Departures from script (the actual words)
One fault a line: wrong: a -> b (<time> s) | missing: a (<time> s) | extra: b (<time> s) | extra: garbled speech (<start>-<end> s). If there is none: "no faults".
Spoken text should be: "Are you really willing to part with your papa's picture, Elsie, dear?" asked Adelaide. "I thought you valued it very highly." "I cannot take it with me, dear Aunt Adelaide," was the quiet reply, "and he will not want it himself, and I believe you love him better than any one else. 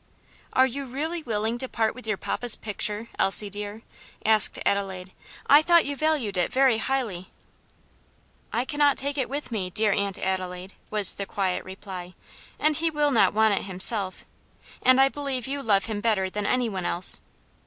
no faults